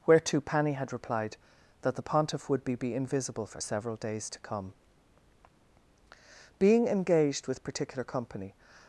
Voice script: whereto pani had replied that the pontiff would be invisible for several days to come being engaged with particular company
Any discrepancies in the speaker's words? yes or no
yes